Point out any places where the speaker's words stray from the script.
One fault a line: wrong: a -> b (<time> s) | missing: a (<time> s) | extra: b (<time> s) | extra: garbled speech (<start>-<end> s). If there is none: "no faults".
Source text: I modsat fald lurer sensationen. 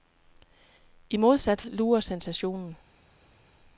missing: fald (1.6 s)